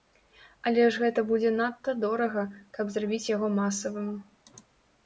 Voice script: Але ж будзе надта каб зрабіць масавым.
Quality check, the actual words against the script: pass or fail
fail